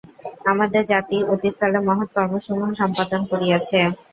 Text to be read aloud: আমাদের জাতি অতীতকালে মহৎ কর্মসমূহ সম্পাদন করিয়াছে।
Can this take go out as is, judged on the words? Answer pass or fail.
pass